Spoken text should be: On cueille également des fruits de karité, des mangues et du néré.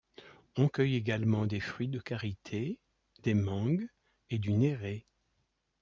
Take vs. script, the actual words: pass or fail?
pass